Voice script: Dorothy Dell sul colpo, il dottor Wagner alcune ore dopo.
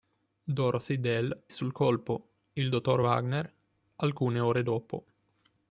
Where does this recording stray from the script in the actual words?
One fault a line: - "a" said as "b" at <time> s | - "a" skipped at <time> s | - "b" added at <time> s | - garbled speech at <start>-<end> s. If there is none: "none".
none